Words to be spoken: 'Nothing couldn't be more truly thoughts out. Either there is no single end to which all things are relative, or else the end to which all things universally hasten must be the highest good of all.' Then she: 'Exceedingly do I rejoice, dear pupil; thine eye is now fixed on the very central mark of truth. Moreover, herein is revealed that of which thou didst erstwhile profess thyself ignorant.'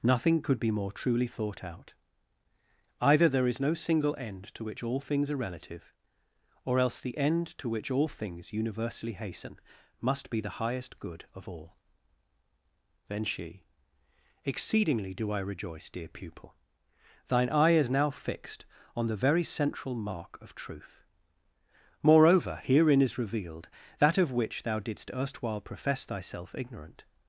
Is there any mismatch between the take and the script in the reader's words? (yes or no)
yes